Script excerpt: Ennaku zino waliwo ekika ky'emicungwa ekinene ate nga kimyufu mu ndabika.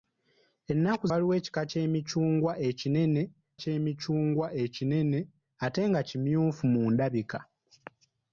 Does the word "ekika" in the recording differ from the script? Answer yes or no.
no